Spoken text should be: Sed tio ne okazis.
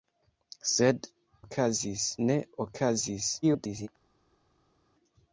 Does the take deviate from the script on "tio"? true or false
true